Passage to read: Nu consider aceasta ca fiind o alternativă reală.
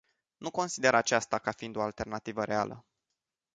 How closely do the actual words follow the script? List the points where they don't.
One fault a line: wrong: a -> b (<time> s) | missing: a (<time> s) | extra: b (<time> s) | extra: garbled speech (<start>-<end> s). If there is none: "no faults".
no faults